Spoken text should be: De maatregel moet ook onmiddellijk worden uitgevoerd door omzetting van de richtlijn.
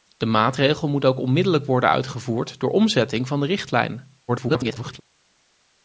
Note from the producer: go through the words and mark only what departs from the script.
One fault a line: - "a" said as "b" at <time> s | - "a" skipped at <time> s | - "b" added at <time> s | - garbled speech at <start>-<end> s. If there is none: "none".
- garbled speech at 4.3-5.0 s